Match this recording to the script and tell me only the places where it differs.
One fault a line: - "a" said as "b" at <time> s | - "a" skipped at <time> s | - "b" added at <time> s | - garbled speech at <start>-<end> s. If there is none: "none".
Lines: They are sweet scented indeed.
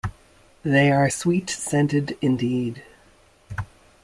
none